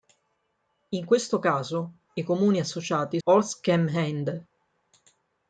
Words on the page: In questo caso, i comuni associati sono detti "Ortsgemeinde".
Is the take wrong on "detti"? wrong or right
wrong